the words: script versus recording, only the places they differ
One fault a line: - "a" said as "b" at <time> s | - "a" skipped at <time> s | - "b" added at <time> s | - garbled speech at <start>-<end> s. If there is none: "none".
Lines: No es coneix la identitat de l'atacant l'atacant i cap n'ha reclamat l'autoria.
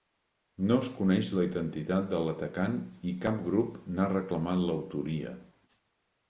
- "l'atacant" skipped at 2.8 s
- "grup" added at 3.5 s